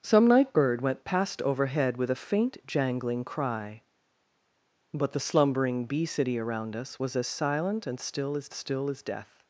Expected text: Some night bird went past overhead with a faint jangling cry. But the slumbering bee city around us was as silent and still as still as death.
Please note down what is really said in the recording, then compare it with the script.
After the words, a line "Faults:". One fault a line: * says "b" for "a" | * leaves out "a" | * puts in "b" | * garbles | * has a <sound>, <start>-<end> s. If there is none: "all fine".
Some night bird went past overhead with a faint jangling cry. But the slumbering bee city around us was as silent and still as still as death.
Faults:
all fine